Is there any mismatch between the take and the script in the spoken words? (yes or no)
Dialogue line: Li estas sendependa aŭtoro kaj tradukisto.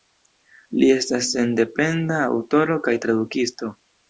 no